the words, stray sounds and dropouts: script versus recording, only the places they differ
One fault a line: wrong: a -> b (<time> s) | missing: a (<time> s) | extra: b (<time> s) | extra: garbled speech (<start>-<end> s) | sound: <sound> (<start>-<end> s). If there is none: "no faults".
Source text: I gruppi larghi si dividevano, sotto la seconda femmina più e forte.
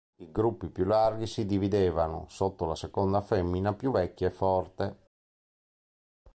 extra: più (0.7 s)
extra: vecchia (3.9 s)